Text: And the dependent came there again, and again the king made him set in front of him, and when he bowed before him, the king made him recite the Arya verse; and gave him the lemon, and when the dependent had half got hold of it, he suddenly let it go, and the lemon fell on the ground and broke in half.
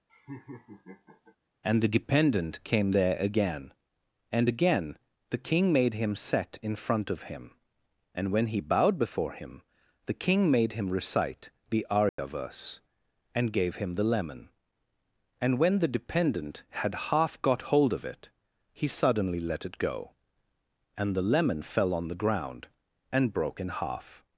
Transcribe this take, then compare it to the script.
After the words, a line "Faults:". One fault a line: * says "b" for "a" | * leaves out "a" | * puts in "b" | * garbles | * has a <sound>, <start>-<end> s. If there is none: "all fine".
And the dependent came there again, and again the king made him set in front of him, and when he bowed before him, the king made him recite the Arya verse; and gave him the lemon, and when the dependent had half got hold of it, he suddenly let it go, and the lemon fell on the ground and broke in half.
Faults:
* has a laugh, 0.1-1.4 s
* has a dropout, 12.1-12.2 s